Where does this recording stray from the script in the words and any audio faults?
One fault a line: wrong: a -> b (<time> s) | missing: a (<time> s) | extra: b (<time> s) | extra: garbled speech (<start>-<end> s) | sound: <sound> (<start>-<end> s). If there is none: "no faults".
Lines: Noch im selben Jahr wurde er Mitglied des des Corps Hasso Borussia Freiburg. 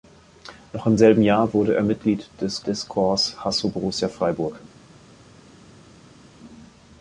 no faults